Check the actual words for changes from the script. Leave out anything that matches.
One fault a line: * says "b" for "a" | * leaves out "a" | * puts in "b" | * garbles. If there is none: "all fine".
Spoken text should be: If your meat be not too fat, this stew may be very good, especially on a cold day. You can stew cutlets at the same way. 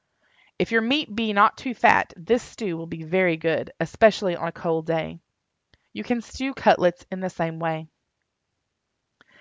* says "will" for "may"
* says "in" for "at"